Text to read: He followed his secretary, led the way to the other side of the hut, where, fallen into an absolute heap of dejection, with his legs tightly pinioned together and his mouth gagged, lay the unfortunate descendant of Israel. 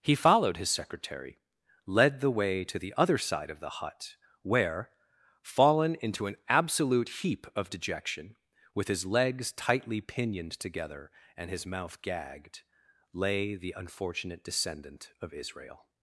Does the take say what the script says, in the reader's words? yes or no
yes